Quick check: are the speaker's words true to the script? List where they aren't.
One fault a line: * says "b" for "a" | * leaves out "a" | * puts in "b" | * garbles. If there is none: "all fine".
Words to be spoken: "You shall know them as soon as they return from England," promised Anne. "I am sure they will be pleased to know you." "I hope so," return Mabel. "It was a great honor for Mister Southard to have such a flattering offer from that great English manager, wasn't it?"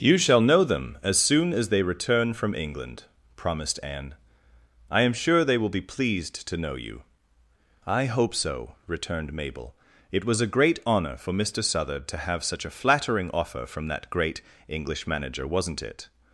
* says "returned" for "return"